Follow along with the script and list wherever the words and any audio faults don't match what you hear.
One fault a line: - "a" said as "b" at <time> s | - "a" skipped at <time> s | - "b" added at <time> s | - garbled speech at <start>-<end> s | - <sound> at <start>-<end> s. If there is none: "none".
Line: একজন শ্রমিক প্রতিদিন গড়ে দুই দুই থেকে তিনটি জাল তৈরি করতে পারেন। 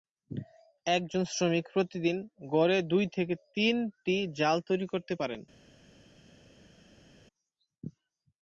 - "দুই" skipped at 3.0 s